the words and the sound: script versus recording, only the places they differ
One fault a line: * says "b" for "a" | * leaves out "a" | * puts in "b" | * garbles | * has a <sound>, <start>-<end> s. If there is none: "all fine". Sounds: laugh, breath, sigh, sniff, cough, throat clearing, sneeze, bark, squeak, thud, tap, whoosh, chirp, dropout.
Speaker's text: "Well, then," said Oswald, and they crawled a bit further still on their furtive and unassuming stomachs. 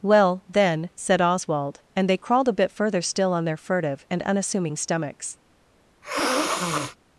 * has a sniff, 6.0-7.0 s